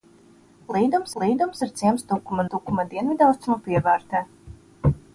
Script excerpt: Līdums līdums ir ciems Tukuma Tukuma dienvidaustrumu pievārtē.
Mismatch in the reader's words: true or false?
false